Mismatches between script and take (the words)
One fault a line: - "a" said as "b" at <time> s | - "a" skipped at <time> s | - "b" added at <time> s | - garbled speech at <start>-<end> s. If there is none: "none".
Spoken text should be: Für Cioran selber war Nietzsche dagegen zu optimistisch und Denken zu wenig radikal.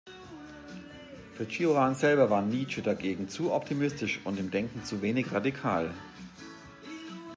- "im" added at 4.4 s